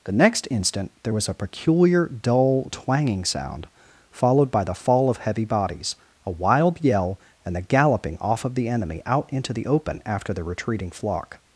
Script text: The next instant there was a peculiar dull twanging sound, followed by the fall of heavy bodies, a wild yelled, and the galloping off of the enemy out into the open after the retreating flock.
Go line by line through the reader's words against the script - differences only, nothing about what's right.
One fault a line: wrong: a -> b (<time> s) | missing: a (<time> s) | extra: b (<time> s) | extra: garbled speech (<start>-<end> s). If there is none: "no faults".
wrong: yelled -> yell (6.8 s)